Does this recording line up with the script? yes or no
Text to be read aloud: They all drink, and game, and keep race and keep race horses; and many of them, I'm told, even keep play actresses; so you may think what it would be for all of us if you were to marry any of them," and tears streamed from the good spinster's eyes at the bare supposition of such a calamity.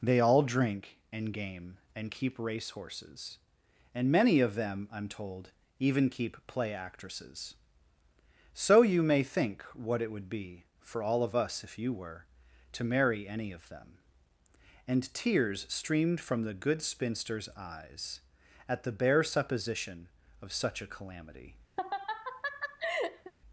no